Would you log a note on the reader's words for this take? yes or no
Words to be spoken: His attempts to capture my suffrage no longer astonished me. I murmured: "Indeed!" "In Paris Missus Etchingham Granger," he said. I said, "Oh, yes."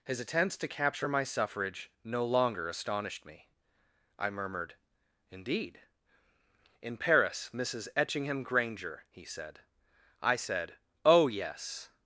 no